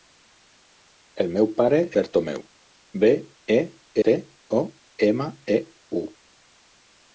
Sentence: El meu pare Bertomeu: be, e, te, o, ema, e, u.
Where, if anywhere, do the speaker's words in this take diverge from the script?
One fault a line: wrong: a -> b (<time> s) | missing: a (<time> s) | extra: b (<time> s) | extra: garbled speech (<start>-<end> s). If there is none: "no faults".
no faults